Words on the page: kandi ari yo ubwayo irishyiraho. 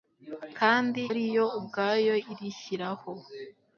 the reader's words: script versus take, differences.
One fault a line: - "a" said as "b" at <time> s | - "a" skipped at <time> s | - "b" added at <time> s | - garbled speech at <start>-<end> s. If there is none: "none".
none